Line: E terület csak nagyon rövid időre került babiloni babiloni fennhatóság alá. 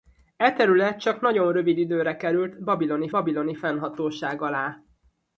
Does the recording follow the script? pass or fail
pass